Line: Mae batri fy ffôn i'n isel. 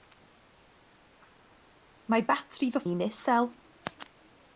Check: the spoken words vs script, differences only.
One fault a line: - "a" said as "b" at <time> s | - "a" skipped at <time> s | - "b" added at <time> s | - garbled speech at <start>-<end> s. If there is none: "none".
- "ffôn" skipped at 2.8 s